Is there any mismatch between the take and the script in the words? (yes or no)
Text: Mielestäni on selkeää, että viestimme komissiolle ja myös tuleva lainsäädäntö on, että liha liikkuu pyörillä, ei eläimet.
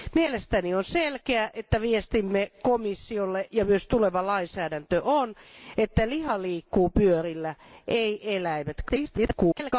yes